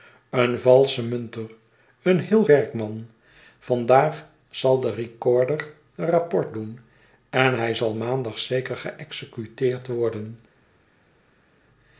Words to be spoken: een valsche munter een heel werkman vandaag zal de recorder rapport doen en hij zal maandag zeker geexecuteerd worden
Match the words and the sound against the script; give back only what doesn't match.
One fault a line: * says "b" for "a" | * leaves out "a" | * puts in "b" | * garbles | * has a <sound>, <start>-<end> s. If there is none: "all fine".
all fine